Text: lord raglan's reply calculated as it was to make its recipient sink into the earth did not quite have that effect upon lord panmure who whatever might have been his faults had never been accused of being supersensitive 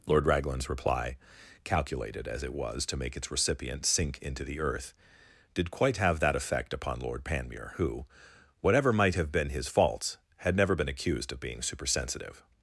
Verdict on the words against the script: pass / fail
fail